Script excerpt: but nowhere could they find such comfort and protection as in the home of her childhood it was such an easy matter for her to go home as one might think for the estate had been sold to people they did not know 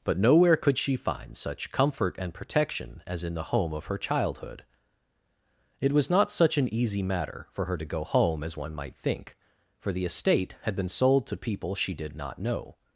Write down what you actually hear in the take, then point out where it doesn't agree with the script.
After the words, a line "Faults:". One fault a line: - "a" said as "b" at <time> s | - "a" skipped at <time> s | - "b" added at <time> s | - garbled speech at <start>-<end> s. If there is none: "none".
but nowhere could she find such comfort and protection as in the home of her childhood it was not such an easy matter for her to go home as one might think for the estate had been sold to people she did not know
Faults:
- "they" said as "she" at 0.8 s
- "not" added at 6.1 s
- "they" said as "she" at 11.8 s